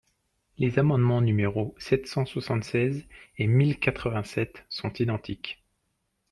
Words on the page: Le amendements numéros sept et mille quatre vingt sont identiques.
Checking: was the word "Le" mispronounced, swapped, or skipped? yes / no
yes